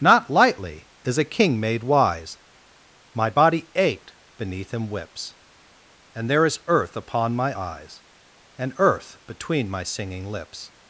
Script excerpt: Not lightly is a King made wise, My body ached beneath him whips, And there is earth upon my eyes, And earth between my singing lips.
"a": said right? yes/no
yes